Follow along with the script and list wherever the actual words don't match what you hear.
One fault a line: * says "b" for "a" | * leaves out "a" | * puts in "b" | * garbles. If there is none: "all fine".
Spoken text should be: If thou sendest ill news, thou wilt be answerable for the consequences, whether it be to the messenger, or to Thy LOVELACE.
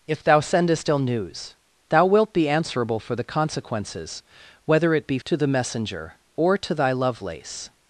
all fine